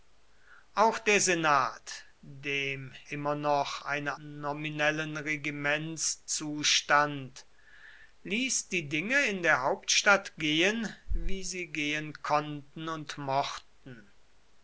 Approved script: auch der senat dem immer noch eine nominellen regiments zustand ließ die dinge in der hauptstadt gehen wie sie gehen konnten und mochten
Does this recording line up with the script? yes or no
yes